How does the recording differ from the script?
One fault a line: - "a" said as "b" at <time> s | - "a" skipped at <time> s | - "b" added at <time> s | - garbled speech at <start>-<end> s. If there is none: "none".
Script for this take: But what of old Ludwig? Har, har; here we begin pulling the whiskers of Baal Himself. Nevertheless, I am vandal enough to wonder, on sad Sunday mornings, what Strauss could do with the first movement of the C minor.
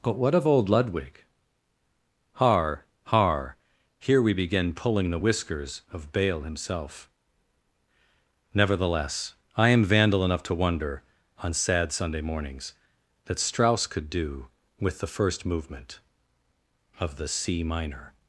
- "what" said as "that" at 13.3 s